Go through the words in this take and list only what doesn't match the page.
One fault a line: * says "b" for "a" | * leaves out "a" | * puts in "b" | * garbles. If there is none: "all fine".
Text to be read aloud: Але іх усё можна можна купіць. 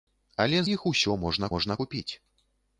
all fine